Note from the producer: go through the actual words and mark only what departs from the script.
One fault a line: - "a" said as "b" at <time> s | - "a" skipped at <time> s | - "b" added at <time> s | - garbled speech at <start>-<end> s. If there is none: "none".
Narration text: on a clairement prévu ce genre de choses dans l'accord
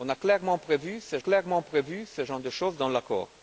- "clairement prévu ce" added at 1.2 s